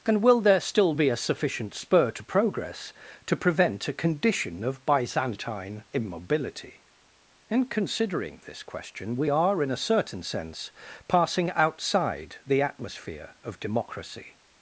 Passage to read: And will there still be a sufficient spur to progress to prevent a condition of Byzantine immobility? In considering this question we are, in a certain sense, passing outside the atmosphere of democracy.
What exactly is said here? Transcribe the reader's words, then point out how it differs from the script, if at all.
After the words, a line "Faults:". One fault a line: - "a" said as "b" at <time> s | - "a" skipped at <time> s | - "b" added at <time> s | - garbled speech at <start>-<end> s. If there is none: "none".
And will there still be a sufficient spur to progress to prevent a condition of Byzantine immobility? In considering this question we are, in a certain sense, passing outside the atmosphere of democracy.
Faults:
none